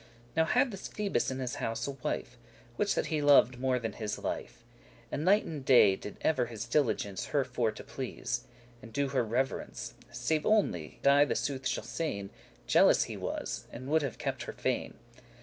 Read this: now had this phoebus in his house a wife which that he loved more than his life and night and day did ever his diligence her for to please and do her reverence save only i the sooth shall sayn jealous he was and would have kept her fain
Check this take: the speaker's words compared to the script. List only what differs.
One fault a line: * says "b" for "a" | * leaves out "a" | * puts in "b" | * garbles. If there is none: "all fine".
all fine